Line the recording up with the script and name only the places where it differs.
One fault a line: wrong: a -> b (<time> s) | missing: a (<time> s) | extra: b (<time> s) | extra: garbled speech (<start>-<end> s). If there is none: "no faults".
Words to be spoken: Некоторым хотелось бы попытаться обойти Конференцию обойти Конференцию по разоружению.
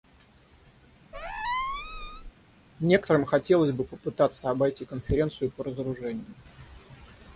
missing: обойти Конференцию (5.5 s)